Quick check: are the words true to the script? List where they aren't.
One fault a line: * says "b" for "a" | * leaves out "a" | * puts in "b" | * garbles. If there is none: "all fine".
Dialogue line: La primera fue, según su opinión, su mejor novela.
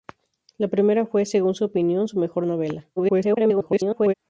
* garbles